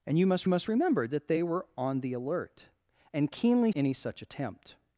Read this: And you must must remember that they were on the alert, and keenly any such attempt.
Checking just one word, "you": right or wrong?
right